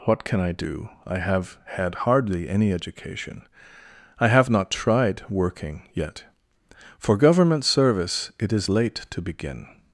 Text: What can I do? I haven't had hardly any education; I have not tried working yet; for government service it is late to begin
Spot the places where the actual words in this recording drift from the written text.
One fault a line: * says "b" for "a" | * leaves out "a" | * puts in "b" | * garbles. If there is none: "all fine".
* says "have" for "haven't"